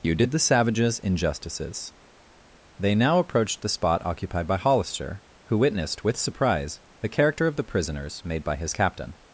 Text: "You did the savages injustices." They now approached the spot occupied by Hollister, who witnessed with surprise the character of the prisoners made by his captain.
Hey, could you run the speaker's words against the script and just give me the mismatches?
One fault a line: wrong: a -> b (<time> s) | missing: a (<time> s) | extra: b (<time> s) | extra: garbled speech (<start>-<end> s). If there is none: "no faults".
no faults